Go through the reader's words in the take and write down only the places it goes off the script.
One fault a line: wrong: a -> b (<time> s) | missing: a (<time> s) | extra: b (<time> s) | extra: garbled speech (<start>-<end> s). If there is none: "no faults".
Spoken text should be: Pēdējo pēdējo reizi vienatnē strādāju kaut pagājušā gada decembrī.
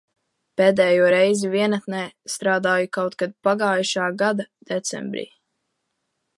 missing: pēdējo (1.1 s)
extra: kad (3.2 s)